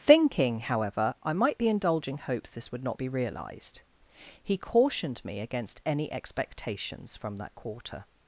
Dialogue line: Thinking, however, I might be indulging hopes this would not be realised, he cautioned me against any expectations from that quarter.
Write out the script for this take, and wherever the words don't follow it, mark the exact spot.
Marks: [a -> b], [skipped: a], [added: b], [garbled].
Thinking, however, I might be indulging hopes this would not be realised, he cautioned me against any expectations from that quarter.